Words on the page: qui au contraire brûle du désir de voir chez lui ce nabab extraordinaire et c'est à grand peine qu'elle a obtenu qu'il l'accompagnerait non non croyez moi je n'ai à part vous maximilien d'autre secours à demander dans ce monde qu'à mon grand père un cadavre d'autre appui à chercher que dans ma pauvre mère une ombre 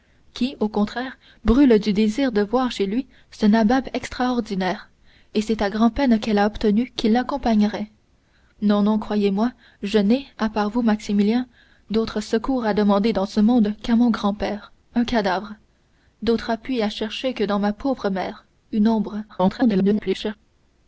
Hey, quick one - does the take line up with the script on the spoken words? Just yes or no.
no